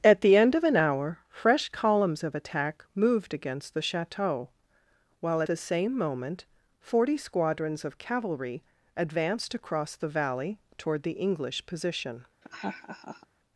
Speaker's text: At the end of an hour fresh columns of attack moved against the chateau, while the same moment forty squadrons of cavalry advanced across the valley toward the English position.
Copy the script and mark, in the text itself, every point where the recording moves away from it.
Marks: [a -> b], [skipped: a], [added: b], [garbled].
At the end of an hour fresh columns of attack moved against the chateau, while the same moment forty squadrons of cavalry advanced across the valley toward the English position.